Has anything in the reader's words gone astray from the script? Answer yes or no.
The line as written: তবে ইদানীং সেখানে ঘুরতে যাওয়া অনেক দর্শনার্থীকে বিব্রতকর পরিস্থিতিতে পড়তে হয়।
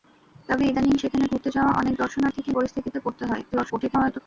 yes